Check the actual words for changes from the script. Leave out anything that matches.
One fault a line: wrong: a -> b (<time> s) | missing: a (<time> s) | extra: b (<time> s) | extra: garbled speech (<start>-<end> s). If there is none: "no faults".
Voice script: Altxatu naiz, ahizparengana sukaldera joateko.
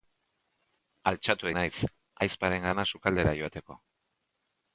no faults